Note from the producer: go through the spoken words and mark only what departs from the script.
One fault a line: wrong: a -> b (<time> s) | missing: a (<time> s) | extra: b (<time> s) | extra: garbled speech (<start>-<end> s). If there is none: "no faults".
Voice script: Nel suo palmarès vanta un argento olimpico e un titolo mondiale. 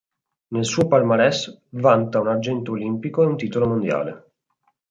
missing: un (2.2 s)